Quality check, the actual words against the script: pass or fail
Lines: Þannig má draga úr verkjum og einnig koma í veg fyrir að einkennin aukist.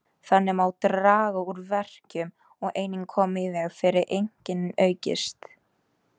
pass